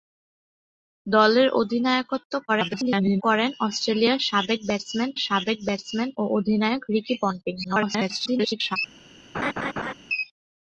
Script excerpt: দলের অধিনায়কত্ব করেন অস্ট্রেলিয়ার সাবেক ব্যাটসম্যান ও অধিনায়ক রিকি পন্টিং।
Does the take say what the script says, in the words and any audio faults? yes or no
no